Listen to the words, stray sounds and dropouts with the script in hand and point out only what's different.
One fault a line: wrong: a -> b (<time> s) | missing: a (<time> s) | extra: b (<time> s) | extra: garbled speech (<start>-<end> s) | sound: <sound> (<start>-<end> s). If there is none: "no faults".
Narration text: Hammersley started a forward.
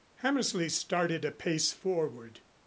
extra: pace (1.3 s)